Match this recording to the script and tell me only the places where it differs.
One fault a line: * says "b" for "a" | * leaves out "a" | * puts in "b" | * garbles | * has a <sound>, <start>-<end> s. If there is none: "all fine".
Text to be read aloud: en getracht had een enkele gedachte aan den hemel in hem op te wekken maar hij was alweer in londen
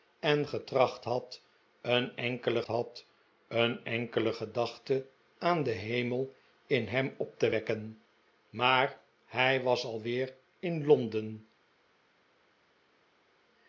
* puts in "had een enkele"